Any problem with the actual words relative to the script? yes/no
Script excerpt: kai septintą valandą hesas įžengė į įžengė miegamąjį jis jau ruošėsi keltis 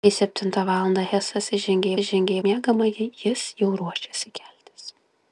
no